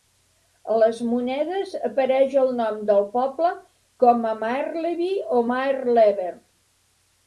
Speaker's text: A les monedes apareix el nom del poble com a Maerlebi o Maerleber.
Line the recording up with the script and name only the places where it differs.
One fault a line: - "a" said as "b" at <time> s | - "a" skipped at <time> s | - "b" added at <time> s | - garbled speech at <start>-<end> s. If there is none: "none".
none